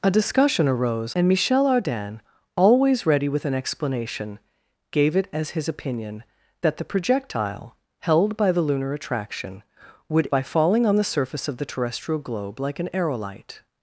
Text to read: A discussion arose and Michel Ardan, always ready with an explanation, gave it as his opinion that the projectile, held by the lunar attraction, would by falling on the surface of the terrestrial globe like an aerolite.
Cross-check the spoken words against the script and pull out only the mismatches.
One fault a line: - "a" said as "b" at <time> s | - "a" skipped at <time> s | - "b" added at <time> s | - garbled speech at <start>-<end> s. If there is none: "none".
none